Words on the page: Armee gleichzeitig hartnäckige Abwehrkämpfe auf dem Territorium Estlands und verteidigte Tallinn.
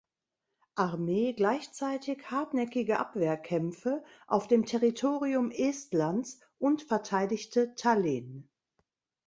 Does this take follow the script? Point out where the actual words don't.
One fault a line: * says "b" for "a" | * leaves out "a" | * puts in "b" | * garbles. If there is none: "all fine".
all fine